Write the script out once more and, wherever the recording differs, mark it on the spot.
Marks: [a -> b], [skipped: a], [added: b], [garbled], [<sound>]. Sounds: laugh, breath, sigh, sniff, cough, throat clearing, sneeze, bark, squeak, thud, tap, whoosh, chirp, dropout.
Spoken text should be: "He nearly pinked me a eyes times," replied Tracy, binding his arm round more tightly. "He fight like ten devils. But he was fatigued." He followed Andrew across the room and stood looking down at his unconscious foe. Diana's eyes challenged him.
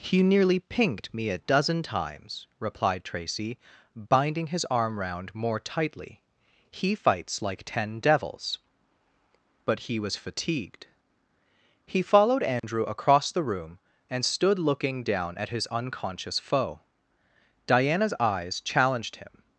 "He nearly pinked me a [eyes -> dozen] times," replied Tracy, binding his arm round more tightly. "He [fight -> fights] like ten devils. But he was fatigued." He followed Andrew [dropout] across the room and stood looking down at his unconscious foe. Diana's eyes challenged him.